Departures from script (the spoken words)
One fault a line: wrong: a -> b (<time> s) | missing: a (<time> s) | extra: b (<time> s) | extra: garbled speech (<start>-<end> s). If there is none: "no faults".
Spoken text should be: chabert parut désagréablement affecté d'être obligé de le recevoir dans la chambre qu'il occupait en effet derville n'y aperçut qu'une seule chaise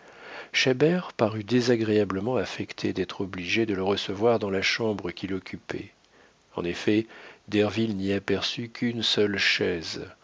no faults